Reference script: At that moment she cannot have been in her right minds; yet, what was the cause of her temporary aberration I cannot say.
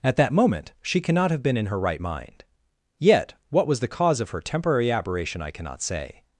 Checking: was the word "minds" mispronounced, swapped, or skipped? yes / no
yes